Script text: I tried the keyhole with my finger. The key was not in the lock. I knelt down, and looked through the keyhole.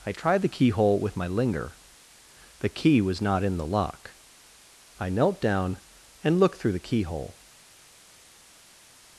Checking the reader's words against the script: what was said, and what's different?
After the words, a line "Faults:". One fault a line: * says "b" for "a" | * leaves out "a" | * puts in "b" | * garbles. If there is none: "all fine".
I tried the keyhole with my linger. The key was not in the lock. I knelt down, and looked through the keyhole.
Faults:
* says "linger" for "finger"